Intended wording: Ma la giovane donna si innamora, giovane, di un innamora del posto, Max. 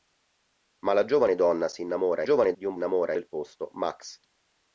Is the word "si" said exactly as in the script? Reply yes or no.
yes